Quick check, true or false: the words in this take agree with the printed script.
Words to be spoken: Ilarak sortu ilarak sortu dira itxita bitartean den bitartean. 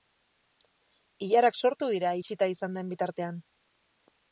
false